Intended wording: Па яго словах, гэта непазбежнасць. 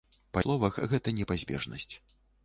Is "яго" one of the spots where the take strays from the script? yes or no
yes